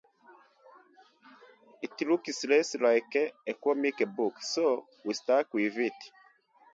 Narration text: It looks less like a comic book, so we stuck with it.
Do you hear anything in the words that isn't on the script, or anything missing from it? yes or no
no